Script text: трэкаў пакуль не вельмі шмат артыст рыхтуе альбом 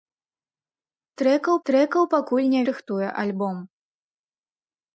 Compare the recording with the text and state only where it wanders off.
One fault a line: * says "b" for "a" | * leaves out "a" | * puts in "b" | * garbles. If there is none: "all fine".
* puts in "трэкаў"
* leaves out "вельмі шмат артыст"